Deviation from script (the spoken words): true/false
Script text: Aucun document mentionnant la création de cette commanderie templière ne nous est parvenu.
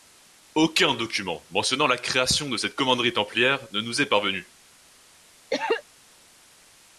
false